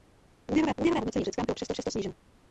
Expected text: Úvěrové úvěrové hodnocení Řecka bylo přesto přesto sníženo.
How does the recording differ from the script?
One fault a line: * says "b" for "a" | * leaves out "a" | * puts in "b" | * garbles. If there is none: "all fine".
all fine